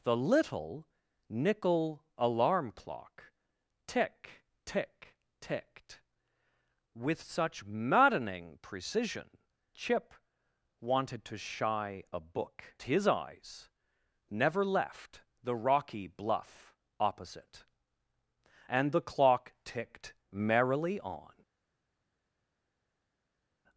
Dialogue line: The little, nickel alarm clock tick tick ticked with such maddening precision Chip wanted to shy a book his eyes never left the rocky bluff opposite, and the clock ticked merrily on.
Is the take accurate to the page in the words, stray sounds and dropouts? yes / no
yes